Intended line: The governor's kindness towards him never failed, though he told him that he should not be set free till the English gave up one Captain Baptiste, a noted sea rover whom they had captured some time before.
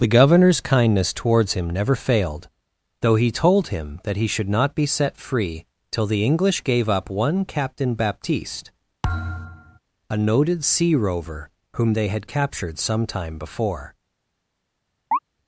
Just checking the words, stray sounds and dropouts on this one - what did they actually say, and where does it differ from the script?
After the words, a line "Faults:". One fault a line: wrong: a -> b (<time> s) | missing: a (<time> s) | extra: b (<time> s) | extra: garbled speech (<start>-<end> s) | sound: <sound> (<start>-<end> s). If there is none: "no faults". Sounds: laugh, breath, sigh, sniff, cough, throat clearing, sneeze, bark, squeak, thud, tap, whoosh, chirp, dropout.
The governor's kindness towards him never failed, though he told him that he should not be set free till the English gave up one Captain Baptiste, a noted sea rover whom they had captured some time before.
Faults:
sound: thud (9.0-9.8 s)
sound: chirp (15.1-15.2 s)